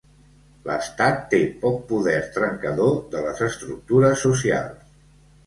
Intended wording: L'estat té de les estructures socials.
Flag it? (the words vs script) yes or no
yes